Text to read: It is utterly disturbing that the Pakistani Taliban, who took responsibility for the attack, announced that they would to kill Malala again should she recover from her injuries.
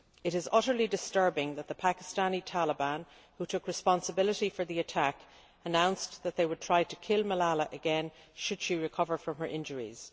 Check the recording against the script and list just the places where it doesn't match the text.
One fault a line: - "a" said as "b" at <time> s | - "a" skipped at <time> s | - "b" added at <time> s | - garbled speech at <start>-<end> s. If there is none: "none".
- "try" added at 6.6 s